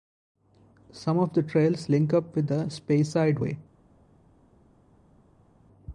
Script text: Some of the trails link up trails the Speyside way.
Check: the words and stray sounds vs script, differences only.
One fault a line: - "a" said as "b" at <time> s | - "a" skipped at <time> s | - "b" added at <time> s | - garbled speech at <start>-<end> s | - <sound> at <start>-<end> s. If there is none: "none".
- "trails" said as "with" at 2.4 s